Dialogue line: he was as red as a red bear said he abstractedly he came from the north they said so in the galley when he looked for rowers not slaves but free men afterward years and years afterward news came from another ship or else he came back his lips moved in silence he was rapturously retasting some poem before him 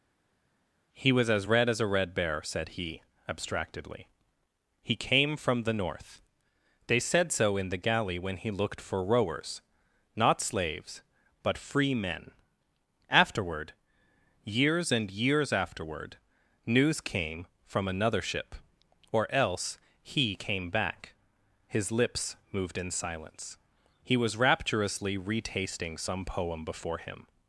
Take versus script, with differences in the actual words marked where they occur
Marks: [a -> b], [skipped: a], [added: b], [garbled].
he was as red as a red bear said he abstractedly he came from the north they said so in the galley when he looked for rowers not slaves but free men afterward years and years afterward news came from another ship or else he came back his lips moved in silence he was rapturously retasting some poem before him